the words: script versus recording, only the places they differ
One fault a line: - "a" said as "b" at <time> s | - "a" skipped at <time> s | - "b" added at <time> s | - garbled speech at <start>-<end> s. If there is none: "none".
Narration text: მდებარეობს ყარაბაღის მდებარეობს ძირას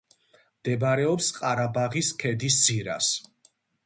- "მდებარეობს" said as "ქედის" at 2.2 s